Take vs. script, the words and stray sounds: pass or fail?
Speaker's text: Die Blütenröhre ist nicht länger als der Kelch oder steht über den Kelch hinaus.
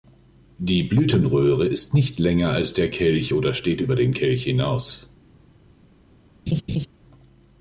fail